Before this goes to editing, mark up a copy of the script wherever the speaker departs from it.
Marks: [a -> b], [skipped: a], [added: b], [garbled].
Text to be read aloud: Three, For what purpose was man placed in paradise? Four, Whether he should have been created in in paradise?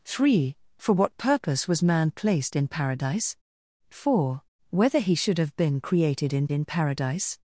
Three, For what purpose was man placed in paradise? Four, Whether he should have been created in in paradise?